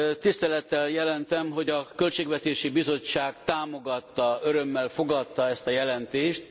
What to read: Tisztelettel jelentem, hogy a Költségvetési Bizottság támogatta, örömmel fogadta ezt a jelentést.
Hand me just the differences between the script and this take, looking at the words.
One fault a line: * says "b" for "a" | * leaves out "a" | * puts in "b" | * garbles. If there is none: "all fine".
all fine